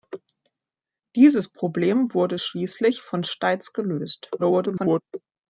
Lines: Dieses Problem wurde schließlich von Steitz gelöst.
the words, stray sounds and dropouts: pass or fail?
fail